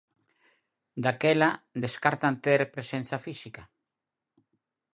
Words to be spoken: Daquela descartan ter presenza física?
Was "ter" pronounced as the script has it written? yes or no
yes